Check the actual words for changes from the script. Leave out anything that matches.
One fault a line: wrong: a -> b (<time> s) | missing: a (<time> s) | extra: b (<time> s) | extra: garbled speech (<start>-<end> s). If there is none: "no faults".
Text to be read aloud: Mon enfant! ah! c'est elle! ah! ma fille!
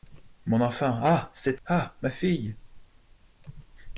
missing: elle (1.6 s)